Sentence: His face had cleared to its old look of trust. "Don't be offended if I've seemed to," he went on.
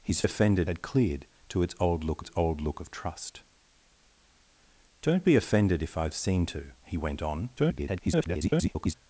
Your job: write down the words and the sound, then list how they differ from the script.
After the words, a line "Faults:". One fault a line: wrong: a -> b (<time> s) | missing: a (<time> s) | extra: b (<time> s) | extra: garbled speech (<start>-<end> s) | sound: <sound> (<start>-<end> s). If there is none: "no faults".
His offended had cleared to its old look its old look of trust. "Don't be offended if I've seemed to," he went on. [garbled]
Faults:
wrong: face -> offended (0.2 s)
extra: its old look (2.2 s)
extra: garbled speech (7.6-8.9 s)